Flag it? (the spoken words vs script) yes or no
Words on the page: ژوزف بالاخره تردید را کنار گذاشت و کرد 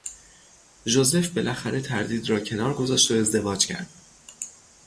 yes